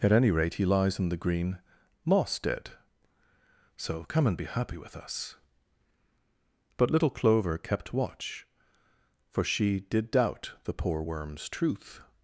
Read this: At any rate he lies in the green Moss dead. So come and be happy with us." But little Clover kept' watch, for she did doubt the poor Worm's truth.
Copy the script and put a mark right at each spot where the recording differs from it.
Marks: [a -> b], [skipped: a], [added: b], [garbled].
At any rate he lies in the green Moss dead. So come and be happy with us." But little Clover kept' watch, for she did doubt the poor Worm's truth.